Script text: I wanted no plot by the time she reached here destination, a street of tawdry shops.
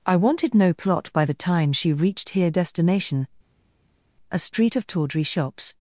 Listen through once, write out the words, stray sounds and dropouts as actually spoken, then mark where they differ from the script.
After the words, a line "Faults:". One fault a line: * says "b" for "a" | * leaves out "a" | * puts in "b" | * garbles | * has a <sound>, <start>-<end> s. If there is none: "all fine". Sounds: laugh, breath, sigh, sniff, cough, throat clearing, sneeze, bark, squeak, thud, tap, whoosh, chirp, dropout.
I wanted no plot by the time she reached here destination, a street of tawdry shops.
Faults:
all fine